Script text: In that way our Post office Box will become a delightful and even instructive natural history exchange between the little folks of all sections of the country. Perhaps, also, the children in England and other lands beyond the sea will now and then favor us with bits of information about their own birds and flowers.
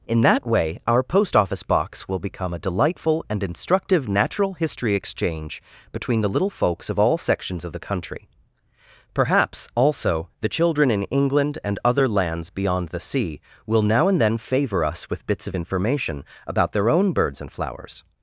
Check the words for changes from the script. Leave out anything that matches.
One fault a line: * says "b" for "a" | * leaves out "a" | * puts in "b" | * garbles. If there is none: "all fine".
* leaves out "even"